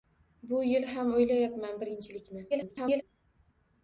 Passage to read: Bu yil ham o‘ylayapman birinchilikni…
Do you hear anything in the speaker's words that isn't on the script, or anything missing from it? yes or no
yes